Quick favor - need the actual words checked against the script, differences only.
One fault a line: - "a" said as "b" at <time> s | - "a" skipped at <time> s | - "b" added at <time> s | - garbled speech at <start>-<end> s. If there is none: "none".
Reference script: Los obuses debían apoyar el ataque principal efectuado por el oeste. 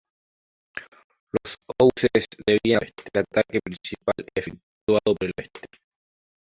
- "apoyar" said as "oeste" at 2.8 s
- "por" skipped at 5.1 s